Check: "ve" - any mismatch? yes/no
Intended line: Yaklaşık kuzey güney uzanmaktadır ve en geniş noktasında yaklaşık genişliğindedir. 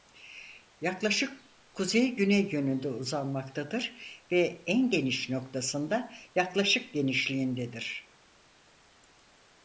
no